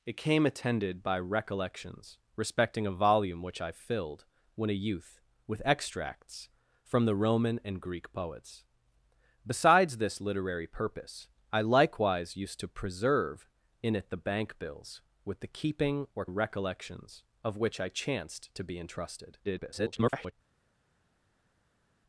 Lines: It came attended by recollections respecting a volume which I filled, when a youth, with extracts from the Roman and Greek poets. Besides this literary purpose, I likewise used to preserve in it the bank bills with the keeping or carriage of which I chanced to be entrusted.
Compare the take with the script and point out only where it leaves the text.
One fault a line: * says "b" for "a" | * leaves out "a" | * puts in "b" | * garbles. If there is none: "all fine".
* says "recollections" for "carriage"
* garbles